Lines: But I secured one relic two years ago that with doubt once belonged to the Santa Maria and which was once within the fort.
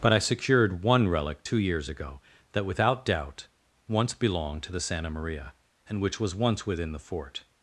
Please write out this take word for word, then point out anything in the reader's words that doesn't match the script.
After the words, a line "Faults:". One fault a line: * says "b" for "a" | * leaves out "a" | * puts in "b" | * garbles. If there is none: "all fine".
But I secured one relic two years ago that without doubt once belonged to the Santa Maria and which was once within the fort.
Faults:
* says "without" for "with"